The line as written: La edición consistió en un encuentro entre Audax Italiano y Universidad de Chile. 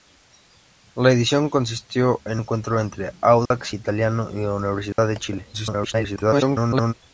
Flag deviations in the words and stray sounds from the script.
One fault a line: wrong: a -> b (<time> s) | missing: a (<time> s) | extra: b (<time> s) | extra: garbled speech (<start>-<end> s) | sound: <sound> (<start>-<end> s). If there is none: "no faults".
missing: un (2.4 s)
sound: dropout (3.5-3.5 s)
sound: dropout (4.9-5.0 s)
extra: garbled speech (5.5-6.9 s)